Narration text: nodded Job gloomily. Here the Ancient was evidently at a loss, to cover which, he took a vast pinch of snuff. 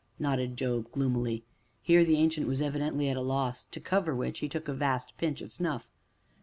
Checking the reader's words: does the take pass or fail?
pass